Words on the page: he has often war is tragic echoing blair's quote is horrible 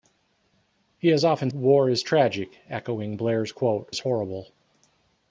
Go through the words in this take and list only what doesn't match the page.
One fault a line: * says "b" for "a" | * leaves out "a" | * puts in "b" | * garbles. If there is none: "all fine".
all fine